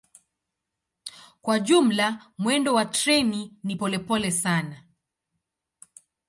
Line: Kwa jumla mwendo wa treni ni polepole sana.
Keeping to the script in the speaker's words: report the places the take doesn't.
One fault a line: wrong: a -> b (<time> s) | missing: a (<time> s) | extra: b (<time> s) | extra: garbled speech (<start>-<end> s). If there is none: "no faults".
no faults